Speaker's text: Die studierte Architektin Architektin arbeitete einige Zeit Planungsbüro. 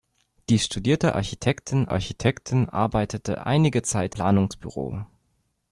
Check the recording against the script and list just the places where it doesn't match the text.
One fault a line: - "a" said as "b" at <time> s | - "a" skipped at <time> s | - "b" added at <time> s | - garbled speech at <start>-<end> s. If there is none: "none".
none